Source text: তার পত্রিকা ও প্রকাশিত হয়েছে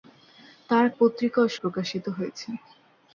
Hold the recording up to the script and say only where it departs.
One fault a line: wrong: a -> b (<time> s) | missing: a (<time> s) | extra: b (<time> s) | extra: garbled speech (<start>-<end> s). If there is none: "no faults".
no faults